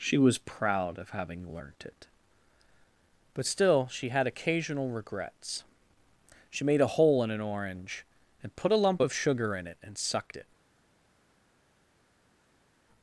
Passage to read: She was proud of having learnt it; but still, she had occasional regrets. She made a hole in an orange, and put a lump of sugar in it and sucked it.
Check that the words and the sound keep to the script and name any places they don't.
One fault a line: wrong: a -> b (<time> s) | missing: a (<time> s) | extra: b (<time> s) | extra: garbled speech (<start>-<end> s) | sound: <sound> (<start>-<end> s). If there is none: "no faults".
no faults